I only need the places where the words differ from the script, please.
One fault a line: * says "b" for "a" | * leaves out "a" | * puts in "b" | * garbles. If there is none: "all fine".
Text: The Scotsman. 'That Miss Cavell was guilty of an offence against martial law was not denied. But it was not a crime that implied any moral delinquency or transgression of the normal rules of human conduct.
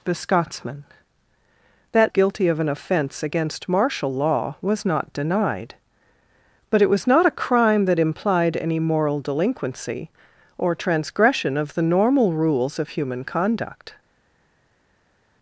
* leaves out "Miss Cavell was"